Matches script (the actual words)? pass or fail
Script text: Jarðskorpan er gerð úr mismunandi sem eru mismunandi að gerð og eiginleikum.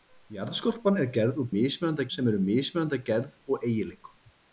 pass